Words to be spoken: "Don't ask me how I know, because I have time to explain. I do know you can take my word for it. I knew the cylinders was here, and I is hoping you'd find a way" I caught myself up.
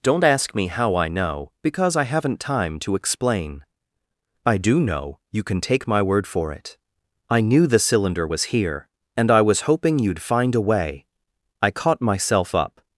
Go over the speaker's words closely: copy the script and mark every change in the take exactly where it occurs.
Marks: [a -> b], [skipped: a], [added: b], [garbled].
"Don't ask me how I know, because I [have -> haven't] time to explain. I do know you can take my word for it. I knew the [cylinders -> cylinder] was here, and I [is -> was] hoping you'd find a way" I caught myself up.